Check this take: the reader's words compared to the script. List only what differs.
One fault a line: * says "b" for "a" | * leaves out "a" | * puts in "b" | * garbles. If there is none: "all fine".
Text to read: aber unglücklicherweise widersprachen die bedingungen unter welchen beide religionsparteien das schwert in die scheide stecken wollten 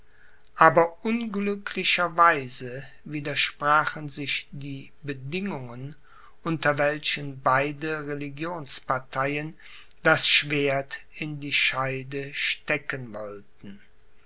* puts in "sich"